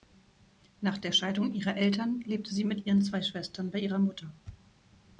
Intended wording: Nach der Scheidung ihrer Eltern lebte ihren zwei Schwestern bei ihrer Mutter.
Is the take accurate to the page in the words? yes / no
no